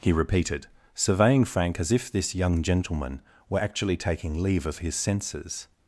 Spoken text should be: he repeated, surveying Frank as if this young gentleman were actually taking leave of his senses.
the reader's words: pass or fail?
pass